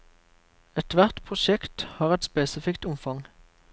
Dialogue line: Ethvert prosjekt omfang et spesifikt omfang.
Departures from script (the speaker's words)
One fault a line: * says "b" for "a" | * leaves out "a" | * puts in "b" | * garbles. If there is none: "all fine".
* says "har" for "omfang"